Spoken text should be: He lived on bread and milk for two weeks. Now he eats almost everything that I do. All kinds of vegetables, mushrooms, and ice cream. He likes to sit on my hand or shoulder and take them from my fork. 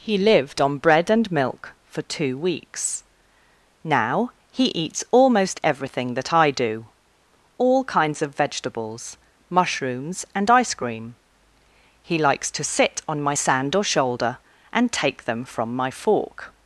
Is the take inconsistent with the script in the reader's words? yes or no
yes